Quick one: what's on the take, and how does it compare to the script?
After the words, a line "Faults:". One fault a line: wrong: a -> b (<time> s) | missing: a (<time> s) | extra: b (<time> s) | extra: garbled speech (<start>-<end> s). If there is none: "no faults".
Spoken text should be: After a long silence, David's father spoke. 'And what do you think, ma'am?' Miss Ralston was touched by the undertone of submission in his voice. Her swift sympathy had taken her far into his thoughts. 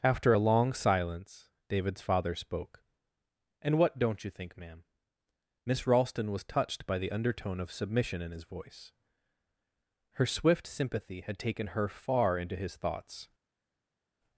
After a long silence, David's father spoke. 'And what don't you think, ma'am?' Miss Ralston was touched by the undertone of submission in his voice. Her swift sympathy had taken her far into his thoughts.
Faults:
wrong: do -> don't (4.0 s)